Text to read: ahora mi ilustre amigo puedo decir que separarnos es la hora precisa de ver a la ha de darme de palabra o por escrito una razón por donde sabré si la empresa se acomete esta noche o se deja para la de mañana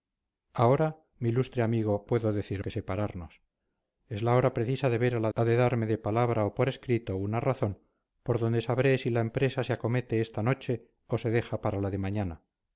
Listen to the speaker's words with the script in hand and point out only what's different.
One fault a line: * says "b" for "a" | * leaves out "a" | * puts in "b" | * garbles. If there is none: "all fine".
all fine